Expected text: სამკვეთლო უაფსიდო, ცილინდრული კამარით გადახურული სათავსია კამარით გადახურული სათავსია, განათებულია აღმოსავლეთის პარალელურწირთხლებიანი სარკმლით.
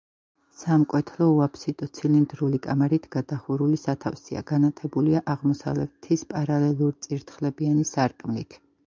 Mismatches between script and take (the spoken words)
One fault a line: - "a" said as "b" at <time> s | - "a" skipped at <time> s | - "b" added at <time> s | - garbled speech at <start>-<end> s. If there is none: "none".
- "კამარით გადახურული სათავსია" skipped at 4.4 s